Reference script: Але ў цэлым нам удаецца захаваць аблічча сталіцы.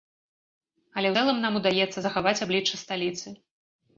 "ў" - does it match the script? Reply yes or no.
no